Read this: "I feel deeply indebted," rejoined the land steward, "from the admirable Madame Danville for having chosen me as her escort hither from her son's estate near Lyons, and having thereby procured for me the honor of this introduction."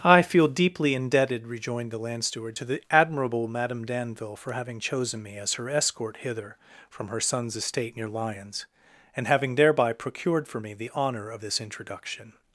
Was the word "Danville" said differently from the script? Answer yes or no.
no